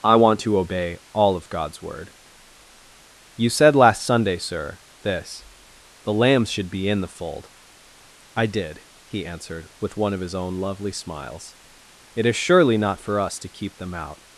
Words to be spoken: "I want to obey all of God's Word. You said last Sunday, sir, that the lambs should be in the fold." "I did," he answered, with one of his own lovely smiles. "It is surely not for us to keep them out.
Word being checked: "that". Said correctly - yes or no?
no